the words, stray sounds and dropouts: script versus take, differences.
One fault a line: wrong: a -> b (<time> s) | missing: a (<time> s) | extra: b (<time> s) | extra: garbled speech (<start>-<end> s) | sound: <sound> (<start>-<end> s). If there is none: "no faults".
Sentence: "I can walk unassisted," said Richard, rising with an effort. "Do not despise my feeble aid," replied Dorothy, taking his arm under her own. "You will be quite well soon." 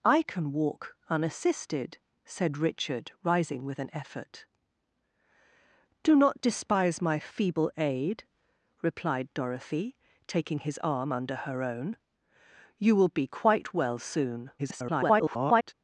extra: garbled speech (14.6-15.7 s)